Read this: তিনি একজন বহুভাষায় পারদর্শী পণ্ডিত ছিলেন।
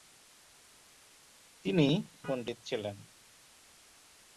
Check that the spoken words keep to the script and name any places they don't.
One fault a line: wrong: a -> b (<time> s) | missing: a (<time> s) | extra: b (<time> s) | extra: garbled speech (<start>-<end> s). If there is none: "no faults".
missing: একজন বহুভাষায় পারদর্শী (1.9 s)